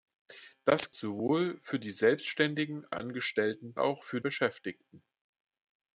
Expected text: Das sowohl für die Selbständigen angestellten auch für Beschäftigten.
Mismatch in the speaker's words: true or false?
false